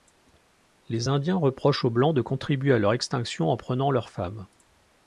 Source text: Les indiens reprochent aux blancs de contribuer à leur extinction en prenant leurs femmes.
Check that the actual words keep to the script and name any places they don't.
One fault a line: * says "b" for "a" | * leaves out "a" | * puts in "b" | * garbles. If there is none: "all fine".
all fine